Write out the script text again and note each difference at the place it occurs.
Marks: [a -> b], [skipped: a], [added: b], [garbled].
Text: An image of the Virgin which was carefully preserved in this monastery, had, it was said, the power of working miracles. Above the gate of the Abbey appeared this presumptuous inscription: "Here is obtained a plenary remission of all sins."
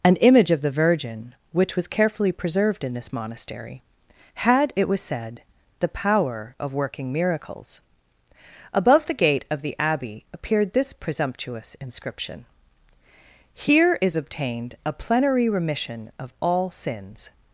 An image of the Virgin which was carefully preserved in this monastery, had, it was said, the power of working miracles. Above the gate of the Abbey appeared this presumptuous inscription: "Here is obtained a plenary remission of all sins."